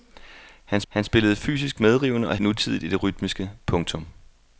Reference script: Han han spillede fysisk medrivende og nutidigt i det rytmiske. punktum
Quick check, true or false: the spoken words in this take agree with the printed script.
true